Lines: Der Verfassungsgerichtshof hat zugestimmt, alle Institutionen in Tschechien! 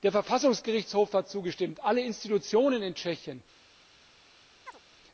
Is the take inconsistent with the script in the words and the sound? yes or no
yes